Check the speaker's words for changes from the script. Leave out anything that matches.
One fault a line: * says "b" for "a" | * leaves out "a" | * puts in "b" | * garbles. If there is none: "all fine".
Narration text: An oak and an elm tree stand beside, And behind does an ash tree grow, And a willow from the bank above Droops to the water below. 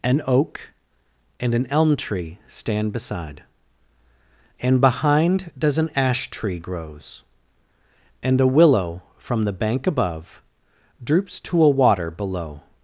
* says "grows" for "grow"
* says "a" for "the"